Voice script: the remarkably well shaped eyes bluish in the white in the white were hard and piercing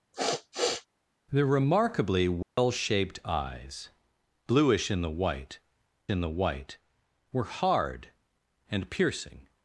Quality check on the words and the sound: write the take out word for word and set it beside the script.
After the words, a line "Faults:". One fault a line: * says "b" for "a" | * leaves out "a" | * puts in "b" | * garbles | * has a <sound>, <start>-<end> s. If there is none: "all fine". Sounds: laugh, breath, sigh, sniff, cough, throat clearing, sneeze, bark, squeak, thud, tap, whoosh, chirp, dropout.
the remarkably well shaped eyes bluish in the white in the white were hard and piercing
Faults:
* has a sniff, 0.1-0.9 s
* has a dropout, 2.4-2.6 s